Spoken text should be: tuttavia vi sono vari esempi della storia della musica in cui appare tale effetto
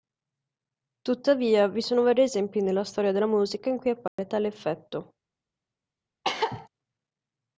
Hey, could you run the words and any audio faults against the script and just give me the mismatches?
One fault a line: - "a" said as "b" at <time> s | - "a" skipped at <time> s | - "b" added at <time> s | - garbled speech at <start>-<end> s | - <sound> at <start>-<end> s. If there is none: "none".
- "della" said as "nella" at 2.6 s
- dropout at 4.1-4.2 s
- cough at 6.2-6.7 s